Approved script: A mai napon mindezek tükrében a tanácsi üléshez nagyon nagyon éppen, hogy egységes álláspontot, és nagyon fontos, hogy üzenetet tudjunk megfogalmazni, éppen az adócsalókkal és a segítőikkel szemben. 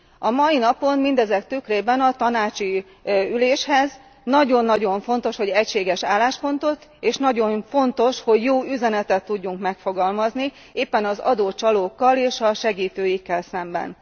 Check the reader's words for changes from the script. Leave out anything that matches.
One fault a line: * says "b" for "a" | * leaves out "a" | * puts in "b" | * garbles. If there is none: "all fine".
* says "fontos" for "éppen"
* puts in "jó"